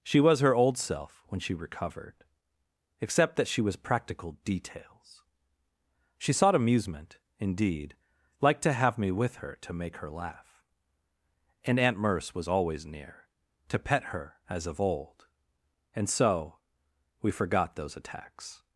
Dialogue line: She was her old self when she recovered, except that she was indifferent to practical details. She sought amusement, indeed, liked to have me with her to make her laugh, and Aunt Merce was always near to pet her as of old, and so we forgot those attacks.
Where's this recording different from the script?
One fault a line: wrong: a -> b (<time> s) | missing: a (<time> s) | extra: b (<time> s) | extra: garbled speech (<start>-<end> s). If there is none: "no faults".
missing: indifferent to (3.8 s)